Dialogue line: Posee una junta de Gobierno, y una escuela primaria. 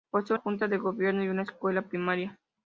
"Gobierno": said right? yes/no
yes